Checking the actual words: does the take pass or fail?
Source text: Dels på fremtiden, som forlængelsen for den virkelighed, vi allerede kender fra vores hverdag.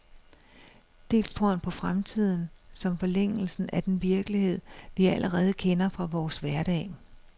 fail